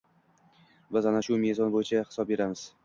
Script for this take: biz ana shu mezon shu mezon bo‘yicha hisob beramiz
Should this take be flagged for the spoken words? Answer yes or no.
yes